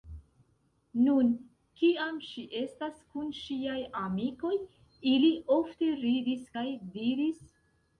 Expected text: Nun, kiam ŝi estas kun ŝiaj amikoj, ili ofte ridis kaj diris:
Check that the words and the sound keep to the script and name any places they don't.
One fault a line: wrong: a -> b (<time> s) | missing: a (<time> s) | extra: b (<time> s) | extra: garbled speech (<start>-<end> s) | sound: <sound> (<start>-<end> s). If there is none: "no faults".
no faults